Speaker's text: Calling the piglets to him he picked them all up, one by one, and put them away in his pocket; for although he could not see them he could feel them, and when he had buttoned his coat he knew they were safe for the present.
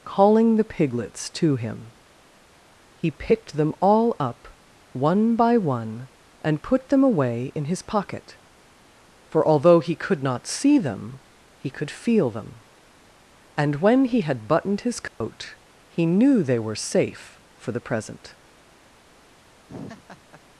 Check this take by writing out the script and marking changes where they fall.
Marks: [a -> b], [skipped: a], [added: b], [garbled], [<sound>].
Calling the piglets to him he picked them all up, one by one, and put them away in his pocket; for although he could not see them he could feel them, and when he had buttoned his coat [dropout] he knew they were safe for the present. [laugh]